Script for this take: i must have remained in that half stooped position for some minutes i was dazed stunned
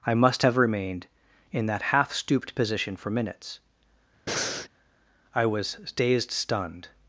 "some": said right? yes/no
no